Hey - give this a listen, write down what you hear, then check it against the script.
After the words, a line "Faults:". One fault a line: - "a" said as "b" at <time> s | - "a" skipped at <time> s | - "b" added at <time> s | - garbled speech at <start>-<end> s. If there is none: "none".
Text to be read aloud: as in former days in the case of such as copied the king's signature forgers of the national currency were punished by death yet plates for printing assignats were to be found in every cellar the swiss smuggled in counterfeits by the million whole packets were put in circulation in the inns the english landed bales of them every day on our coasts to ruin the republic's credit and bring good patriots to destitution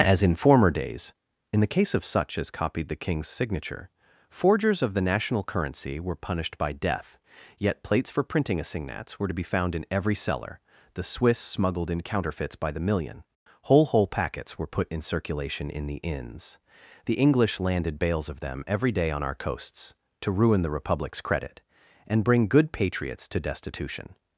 as in former days in the case of such as copied the king's signature forgers of the national currency were punished by death yet plates for printing assignats were to be found in every cellar the swiss smuggled in counterfeits by the million whole whole packets were put in circulation in the inns the english landed bales of them every day on our coasts to ruin the republic's credit and bring good patriots to destitution
Faults:
- "whole" added at 13.8 s